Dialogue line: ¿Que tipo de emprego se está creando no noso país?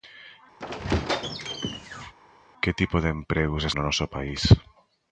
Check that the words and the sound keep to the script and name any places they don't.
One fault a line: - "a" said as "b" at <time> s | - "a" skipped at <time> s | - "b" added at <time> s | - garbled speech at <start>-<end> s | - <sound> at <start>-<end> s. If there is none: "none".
- squeak at 0.6-2.1 s
- "está creando" skipped at 3.7 s